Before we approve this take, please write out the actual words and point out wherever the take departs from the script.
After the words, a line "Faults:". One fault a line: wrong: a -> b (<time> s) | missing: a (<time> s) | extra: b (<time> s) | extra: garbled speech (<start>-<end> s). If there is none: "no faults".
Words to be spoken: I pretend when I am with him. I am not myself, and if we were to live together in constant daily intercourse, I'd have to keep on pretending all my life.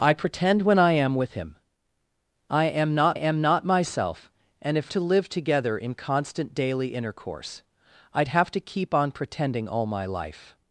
I pretend when I am with him. I am not am not myself, and if to live together in constant daily intercourse, I'd have to keep on pretending all my life.
Faults:
extra: am not (3.1 s)
missing: we were (4.9 s)